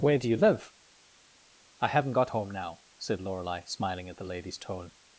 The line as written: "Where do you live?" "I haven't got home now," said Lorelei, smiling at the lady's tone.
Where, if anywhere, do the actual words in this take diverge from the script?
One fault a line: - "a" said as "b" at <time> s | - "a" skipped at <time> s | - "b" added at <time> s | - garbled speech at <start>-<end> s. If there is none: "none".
none